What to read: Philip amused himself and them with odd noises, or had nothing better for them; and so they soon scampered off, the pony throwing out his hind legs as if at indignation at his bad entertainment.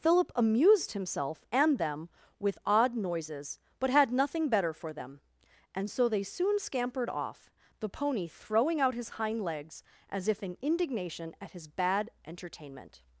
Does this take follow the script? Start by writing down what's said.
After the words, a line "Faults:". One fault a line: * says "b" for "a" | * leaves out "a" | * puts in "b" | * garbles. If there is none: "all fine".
Philip amused himself and them with odd noises, but had nothing better for them; and so they soon scampered off, the pony throwing out his hind legs as if in indignation at his bad entertainment.
Faults:
* says "but" for "or"
* says "in" for "at"